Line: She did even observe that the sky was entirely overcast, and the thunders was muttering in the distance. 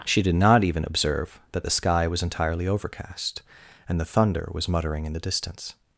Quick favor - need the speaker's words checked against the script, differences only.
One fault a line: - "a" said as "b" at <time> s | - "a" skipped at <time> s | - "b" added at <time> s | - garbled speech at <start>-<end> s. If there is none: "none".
- "not" added at 0.3 s
- "thunders" said as "thunder" at 4.0 s